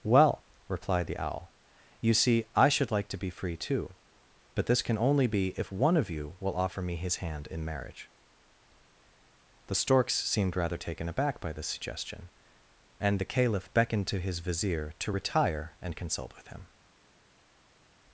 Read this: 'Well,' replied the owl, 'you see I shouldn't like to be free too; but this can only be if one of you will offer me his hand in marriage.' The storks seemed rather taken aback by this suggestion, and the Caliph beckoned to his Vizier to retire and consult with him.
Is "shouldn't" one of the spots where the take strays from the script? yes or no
yes